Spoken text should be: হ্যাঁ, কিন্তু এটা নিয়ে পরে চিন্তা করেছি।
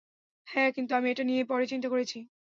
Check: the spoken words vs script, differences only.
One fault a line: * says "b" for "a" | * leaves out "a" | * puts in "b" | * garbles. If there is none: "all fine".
* puts in "আমি"